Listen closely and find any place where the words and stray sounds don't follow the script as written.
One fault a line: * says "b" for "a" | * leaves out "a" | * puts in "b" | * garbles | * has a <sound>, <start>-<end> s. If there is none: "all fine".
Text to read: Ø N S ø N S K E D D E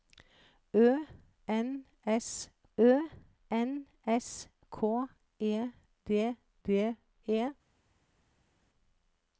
all fine